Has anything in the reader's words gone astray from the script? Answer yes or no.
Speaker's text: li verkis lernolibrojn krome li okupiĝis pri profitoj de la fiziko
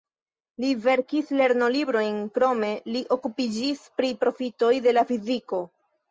no